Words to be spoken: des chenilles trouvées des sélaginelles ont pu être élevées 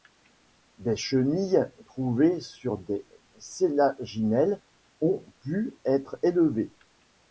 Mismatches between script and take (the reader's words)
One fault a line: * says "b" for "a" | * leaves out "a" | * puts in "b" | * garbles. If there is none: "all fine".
* puts in "sur"